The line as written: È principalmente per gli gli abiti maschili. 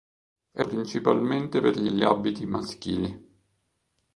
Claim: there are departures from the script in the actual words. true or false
false